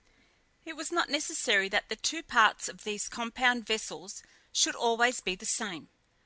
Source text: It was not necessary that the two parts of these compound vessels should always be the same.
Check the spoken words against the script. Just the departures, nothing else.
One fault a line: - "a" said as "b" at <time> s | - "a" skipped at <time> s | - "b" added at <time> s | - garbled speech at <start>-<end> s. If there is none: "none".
none